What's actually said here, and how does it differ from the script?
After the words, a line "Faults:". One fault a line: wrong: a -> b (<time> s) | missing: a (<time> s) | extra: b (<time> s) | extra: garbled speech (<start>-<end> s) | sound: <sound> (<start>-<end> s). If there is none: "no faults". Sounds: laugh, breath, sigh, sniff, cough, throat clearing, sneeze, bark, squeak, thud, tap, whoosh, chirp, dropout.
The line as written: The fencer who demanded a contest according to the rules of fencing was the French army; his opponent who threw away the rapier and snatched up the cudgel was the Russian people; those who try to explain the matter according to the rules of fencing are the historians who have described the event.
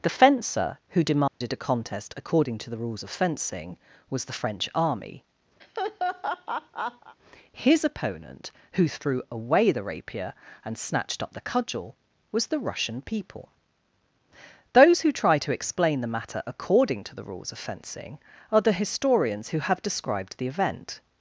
The fencer who demanded a contest according to the rules of fencing was the French army; his opponent who threw away the rapier and snatched up the cudgel was the Russian people; those who try to explain the matter according to the rules of fencing are the historians who have described the event.
Faults:
sound: dropout (1.3-1.4 s)
sound: laugh (5.6-7.2 s)